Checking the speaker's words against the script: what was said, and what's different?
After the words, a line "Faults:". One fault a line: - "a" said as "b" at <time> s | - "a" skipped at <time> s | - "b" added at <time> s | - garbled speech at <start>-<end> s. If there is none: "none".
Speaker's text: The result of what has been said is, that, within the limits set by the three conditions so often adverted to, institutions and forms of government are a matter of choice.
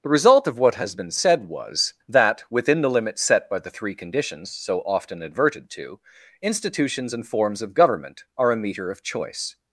The result of what has been said was, that, within the limits set by the three conditions so often adverted to, institutions and forms of government are a meter of choice.
Faults:
- "is" said as "was" at 1.5 s
- "matter" said as "meter" at 8.6 s